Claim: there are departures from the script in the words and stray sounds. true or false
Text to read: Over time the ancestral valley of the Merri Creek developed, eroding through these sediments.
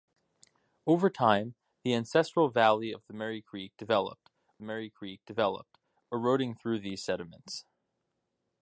true